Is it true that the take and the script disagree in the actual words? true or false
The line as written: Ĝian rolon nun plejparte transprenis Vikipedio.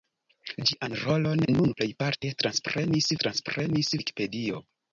true